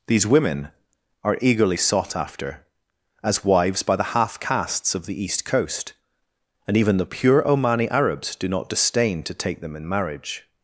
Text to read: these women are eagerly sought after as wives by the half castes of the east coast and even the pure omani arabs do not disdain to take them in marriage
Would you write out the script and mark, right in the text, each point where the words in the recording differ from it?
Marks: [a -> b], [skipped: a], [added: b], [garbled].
these women are eagerly sought after as wives by the half castes of the east coast and even the pure omani arabs do not disdain to take them in marriage